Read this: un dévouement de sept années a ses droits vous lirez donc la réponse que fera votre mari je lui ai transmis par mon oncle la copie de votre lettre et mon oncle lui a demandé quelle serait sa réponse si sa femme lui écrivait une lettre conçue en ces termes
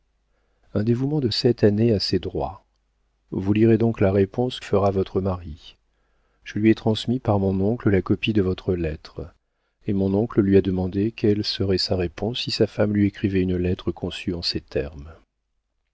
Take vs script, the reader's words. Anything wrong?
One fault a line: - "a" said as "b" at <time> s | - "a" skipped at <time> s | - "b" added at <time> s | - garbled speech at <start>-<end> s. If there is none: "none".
- "que" skipped at 4.6 s